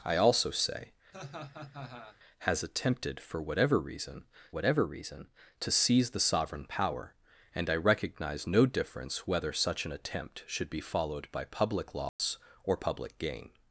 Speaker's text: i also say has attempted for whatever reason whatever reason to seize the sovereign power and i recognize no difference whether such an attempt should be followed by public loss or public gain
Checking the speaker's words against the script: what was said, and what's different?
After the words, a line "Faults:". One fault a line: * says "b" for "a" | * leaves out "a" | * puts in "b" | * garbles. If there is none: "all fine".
i also say has attempted for whatever reason whatever reason to seize the sovereign power and i recognize no difference whether such an attempt should be followed by public loss or public gain
Faults:
all fine